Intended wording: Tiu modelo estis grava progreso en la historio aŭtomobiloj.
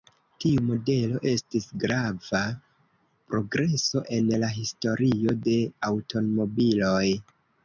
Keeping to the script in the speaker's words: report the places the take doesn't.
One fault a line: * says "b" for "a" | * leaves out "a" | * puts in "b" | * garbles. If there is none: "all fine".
* puts in "de"